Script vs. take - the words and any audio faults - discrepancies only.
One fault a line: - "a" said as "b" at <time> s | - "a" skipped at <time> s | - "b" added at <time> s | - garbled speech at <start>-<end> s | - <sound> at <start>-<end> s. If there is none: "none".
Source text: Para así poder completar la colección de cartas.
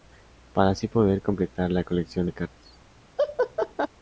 - laugh at 3.2-3.9 s